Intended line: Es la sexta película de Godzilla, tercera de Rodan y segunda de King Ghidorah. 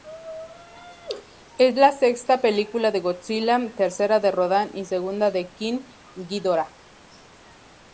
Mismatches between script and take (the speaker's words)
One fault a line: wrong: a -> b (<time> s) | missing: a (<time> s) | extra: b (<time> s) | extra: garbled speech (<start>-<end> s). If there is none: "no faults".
no faults